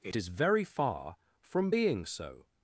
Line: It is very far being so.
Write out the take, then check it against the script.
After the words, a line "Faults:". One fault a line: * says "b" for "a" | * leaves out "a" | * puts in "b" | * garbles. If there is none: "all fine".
It is very far from being so.
Faults:
* puts in "from"